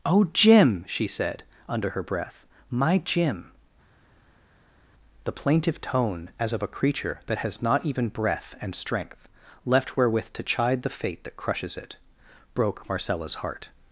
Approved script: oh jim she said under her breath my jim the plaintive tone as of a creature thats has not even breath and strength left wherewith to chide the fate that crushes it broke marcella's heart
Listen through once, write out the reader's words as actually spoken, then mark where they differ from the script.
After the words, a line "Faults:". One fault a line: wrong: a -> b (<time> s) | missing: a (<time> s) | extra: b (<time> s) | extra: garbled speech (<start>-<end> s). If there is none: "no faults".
oh jim she said under her breath my jim the plaintive tone as of a creature that has not even breath and strength left wherewith to chide the fate that crushes it broke marcella's heart
Faults:
wrong: thats -> that (7.3 s)